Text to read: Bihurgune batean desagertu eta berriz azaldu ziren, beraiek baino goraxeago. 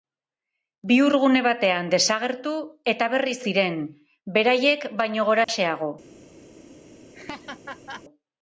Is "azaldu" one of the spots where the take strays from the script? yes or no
yes